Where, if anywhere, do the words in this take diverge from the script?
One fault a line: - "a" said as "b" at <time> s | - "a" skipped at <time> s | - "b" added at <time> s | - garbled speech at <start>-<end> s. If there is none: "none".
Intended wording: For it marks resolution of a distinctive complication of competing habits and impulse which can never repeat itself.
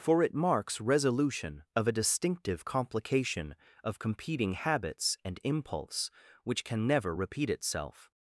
none